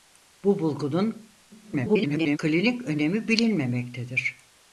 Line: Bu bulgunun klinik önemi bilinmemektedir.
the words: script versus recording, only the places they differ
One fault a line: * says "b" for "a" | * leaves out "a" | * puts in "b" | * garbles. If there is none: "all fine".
* garbles